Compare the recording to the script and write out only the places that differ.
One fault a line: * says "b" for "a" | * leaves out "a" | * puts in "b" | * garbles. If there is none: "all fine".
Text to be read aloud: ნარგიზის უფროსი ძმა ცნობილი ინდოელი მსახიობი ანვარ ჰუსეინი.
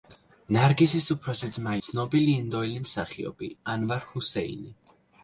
all fine